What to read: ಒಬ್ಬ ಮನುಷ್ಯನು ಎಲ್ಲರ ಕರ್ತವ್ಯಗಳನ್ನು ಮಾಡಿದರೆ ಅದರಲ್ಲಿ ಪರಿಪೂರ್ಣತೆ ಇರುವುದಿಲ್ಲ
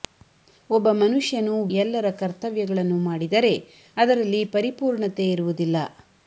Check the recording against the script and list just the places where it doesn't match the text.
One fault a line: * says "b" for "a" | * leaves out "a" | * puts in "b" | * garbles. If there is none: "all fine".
all fine